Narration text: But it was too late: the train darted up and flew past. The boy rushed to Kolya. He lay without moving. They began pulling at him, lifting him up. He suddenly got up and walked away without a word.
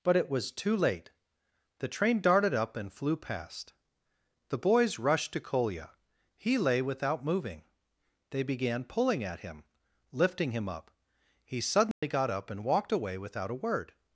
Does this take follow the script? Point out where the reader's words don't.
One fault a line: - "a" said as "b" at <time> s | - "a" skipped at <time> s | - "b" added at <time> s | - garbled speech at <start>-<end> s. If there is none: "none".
- "boy" said as "boys" at 4.6 s